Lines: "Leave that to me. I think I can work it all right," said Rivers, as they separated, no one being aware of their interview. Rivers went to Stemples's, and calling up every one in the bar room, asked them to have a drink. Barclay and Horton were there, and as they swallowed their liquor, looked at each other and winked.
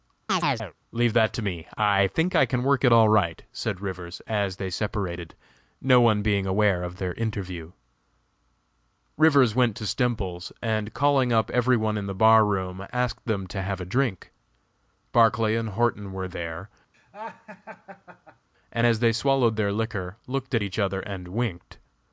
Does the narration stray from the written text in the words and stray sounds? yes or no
yes